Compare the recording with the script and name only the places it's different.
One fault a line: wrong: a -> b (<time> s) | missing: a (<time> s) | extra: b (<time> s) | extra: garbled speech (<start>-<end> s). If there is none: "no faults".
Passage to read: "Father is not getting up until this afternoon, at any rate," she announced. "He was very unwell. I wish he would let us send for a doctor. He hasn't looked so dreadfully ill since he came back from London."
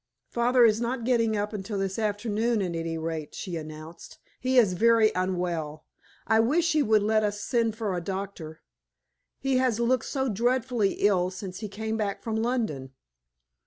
wrong: was -> is (4.6 s)
wrong: hasn't -> has (9.6 s)